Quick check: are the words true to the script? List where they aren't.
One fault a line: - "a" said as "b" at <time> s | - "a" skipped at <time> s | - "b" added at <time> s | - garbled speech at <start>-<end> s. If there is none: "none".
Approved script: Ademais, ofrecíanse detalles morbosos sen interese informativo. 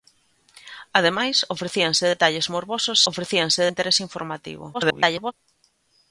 - "sen" said as "ofrecíanse" at 3.1 s
- garbled speech at 4.7-5.3 s